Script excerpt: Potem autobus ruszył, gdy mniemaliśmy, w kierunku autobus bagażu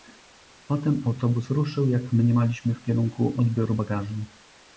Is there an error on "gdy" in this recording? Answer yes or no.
yes